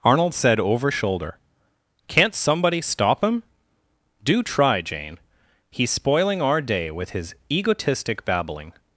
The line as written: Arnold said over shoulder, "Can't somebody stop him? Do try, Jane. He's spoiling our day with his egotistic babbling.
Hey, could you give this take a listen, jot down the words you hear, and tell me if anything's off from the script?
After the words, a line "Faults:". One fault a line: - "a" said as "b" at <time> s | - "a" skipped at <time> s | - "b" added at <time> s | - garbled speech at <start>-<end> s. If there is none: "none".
Arnold said over shoulder, "Can't somebody stop him? Do try, Jane. He's spoiling our day with his egotistic babbling.
Faults:
none